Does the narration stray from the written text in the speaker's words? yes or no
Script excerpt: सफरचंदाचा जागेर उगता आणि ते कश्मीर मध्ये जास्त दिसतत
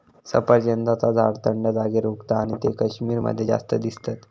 yes